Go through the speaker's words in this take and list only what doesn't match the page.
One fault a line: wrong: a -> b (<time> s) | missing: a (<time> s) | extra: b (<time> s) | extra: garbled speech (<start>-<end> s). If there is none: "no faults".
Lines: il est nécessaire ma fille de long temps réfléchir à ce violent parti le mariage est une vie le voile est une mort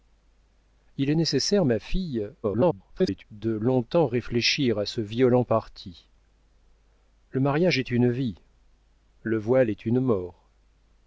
extra: garbled speech (2.4-3.2 s)